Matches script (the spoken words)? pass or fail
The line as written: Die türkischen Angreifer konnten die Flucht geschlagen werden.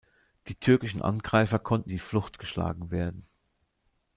pass